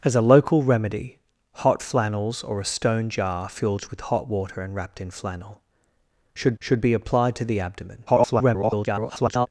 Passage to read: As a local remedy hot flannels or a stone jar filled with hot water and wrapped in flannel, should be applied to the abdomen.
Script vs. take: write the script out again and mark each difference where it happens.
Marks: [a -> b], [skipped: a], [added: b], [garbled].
As a local remedy hot flannels or a stone jar filled with hot water and wrapped in flannel, should [added: should] be applied to the abdomen. [garbled]